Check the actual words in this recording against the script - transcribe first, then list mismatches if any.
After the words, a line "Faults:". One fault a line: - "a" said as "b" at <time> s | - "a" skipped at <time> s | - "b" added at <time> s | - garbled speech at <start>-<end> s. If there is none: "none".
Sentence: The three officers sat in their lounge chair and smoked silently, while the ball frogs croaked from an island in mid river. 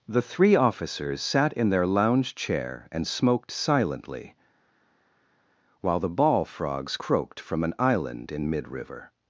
The three officers sat in their lounge chair and smoked silently, while the ball frogs croaked from an island in mid river.
Faults:
none